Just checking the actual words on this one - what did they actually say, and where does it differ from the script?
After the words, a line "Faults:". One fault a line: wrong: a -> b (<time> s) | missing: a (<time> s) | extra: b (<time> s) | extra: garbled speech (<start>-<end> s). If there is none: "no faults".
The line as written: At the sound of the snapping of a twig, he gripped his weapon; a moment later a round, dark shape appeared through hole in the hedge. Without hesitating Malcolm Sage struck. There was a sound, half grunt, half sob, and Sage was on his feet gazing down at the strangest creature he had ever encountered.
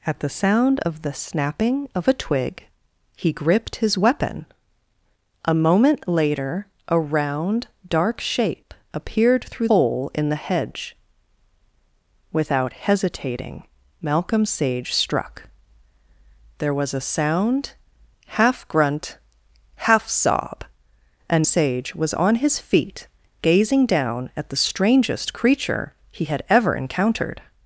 At the sound of the snapping of a twig, he gripped his weapon; a moment later a round, dark shape appeared through hole in the hedge. Without hesitating Malcolm Sage struck. There was a sound, half grunt, half sob, and Sage was on his feet gazing down at the strangest creature he had ever encountered.
Faults:
no faults